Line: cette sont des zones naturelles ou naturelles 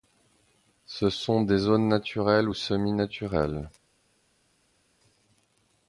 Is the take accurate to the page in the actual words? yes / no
no